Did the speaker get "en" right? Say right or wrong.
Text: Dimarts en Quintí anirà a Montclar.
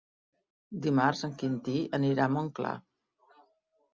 right